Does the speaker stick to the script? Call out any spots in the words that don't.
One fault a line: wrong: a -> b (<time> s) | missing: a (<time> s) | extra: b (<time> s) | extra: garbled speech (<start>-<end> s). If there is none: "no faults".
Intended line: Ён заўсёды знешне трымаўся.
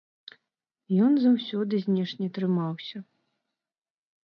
no faults